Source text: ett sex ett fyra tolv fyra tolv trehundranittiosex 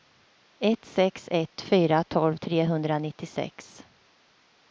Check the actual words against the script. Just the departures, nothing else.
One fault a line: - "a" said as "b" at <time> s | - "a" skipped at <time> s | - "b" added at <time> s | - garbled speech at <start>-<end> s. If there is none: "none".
- "fyra tolv" skipped at 2.4 s